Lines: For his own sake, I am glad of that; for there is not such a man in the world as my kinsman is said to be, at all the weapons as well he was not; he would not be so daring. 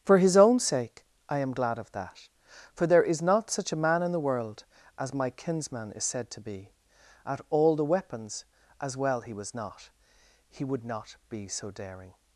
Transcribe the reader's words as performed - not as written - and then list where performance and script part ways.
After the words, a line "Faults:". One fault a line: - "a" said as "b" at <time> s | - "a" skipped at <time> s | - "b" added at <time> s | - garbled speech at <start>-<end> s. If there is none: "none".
For his own sake, I am glad of that; for there is not such a man in the world as my kinsman is said to be, at all the weapons as well he was not; he would not be so daring.
Faults:
none